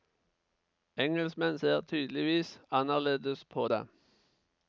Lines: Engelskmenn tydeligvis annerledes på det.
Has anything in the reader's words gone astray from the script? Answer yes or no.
yes